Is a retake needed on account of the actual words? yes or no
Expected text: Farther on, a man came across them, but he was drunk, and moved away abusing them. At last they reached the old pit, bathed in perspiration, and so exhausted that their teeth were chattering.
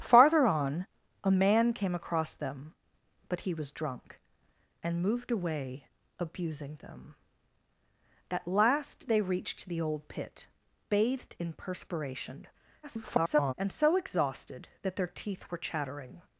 yes